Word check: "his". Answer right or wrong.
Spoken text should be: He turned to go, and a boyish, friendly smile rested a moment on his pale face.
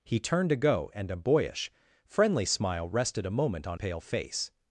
wrong